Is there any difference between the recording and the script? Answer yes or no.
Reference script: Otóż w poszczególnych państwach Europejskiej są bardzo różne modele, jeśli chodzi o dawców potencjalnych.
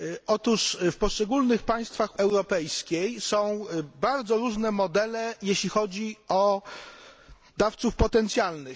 no